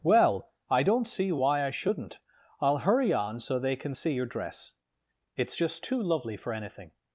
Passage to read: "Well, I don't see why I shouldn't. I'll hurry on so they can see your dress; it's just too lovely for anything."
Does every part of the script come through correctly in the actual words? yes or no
yes